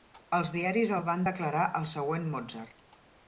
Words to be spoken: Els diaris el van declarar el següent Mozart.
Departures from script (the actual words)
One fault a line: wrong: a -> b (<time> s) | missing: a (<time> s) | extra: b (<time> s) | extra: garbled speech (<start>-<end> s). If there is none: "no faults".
no faults